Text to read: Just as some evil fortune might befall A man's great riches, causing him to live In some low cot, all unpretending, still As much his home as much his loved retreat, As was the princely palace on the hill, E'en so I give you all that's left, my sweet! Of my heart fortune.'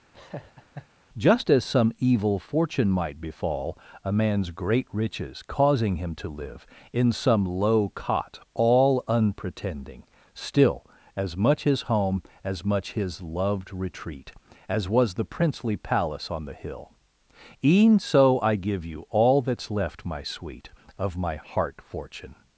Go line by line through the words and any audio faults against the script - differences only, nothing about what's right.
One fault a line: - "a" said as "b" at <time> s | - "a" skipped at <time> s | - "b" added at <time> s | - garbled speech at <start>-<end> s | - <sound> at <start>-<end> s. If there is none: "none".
- laugh at 0.1-0.9 s